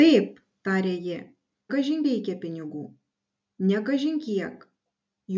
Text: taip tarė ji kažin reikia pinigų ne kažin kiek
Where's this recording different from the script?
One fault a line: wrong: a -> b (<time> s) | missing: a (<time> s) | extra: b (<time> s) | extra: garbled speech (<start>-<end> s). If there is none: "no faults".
no faults